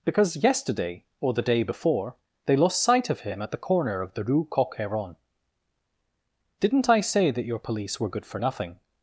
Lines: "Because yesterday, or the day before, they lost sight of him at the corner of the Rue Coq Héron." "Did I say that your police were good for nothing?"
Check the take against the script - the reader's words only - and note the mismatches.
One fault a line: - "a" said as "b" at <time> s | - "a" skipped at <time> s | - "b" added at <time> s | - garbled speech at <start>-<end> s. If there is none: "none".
- "Did" said as "Didn't" at 6.6 s